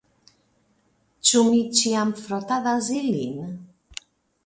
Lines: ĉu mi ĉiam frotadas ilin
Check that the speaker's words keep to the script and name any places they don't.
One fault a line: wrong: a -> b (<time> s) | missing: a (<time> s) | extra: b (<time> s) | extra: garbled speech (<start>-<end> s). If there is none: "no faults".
no faults